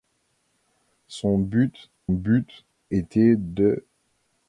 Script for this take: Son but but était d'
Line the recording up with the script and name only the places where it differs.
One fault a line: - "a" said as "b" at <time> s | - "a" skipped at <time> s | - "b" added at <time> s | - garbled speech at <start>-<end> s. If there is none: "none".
none